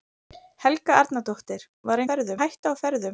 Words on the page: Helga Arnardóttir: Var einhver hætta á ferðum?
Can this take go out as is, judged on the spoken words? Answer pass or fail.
fail